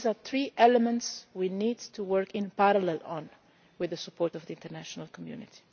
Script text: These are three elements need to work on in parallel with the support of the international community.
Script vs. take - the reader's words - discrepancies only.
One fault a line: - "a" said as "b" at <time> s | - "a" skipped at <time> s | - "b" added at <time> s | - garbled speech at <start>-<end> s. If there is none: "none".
- "we" added at 1.3 s